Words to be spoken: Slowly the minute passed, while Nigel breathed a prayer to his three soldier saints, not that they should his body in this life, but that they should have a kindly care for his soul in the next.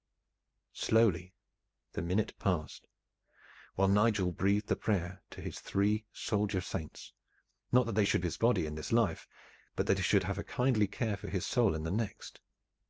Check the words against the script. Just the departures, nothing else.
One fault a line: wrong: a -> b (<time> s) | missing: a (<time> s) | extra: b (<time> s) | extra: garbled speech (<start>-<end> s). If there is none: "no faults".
no faults